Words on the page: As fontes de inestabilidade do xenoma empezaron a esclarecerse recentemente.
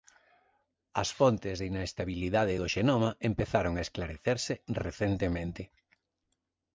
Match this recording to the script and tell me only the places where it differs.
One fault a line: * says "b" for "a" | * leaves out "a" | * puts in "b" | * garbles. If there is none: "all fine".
all fine